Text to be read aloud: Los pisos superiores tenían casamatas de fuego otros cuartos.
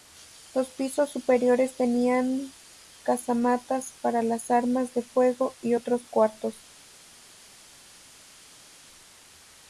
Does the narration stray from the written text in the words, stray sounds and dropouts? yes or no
yes